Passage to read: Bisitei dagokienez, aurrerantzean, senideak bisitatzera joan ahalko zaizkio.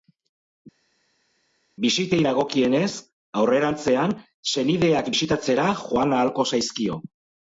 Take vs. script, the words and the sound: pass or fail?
pass